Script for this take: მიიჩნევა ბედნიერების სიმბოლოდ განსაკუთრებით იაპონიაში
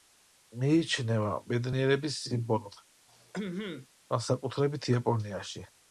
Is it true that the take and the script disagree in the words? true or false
false